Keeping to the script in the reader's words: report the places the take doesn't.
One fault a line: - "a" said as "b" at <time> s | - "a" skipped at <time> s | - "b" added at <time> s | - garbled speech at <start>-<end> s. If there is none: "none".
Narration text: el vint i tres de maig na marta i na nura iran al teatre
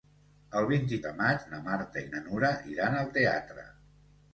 - "tres" skipped at 1.0 s